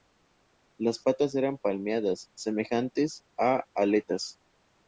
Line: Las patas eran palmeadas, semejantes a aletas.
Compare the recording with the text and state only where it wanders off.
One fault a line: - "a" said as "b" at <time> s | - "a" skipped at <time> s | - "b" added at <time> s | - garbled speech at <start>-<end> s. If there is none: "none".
none